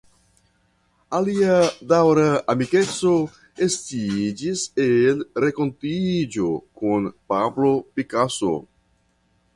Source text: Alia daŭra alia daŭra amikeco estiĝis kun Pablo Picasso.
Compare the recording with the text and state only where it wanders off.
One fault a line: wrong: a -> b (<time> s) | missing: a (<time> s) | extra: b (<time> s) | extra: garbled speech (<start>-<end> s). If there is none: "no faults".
wrong: alia daŭra amikeco estiĝis -> amikeco estiĝis el renkontiĝo (2.5 s)